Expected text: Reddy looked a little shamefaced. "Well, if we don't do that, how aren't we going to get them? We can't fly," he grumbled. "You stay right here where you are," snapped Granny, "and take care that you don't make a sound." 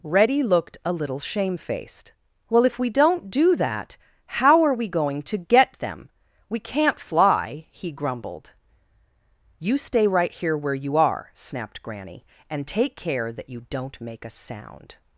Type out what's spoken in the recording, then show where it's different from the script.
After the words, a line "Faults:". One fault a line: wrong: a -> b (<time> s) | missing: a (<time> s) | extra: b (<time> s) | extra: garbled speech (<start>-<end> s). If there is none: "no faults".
Reddy looked a little shamefaced. "Well, if we don't do that, how are we going to get them? We can't fly," he grumbled. "You stay right here where you are," snapped Granny, "and take care that you don't make a sound."
Faults:
wrong: aren't -> are (4.6 s)